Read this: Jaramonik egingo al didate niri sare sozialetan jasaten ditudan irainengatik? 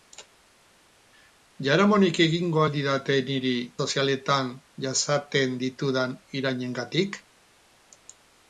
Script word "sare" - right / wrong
wrong